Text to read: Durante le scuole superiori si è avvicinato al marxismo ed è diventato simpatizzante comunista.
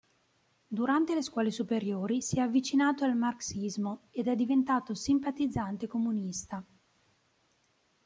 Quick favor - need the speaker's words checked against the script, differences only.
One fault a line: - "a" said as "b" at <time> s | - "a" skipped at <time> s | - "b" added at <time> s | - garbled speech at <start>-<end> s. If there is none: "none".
none